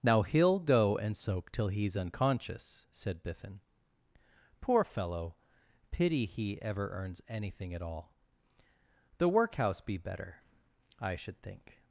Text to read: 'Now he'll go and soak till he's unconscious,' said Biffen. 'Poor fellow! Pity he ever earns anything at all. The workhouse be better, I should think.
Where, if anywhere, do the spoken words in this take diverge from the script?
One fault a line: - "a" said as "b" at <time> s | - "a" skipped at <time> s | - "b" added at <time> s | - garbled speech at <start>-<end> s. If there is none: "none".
none